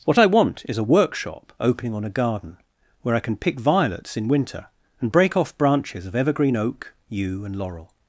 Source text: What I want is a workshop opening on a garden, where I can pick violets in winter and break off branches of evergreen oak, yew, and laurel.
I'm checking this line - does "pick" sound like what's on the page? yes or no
yes